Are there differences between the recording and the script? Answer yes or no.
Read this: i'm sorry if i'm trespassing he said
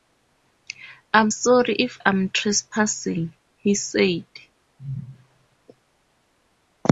no